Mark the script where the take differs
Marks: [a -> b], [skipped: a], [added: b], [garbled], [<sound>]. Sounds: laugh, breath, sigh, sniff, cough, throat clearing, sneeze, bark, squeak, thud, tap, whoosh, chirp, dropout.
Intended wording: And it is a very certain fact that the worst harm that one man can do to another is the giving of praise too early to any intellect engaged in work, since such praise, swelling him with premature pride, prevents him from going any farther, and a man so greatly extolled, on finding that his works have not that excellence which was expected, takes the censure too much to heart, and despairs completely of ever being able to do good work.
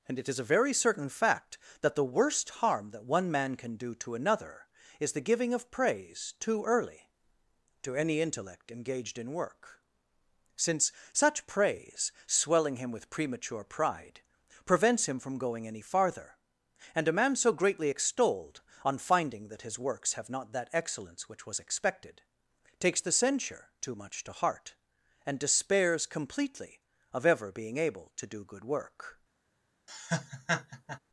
And it is a very certain fact that the worst harm that one man can do to another is the giving of praise too early to any intellect engaged in work, since such praise, swelling him with premature pride, prevents him from going any farther, and a man so greatly extolled, on finding that his works have not that excellence which was expected, takes the censure too much to heart, and despairs completely of ever being able to do good work. [laugh]